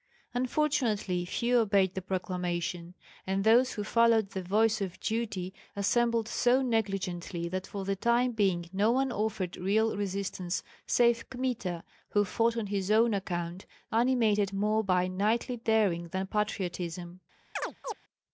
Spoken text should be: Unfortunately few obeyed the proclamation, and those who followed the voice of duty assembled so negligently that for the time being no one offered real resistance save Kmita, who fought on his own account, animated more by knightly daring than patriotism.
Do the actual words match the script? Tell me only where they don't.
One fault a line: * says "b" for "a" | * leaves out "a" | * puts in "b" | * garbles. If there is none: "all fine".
all fine